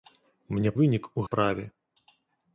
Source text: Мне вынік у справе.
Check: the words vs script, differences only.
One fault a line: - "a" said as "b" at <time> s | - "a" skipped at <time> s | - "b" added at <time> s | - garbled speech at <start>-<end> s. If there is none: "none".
none